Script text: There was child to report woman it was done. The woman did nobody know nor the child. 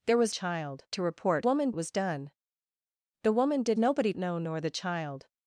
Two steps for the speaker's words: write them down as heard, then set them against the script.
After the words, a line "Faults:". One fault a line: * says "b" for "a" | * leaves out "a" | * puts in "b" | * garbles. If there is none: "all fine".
There was child to report woman it was done. The woman did nobody know nor the child.
Faults:
all fine